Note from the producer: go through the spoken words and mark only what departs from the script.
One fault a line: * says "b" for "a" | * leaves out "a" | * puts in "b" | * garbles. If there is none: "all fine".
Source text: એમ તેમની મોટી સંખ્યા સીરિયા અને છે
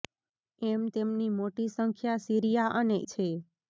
all fine